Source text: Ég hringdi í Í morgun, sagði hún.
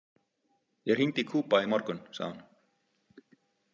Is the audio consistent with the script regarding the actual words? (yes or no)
no